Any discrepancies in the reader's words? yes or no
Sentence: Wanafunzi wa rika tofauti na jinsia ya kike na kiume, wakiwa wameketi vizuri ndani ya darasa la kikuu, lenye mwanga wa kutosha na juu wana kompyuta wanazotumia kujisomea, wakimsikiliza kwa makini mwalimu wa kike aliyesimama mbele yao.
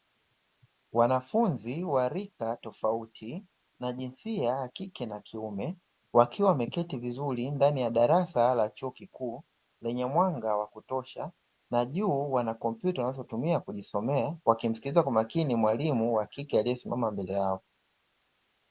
yes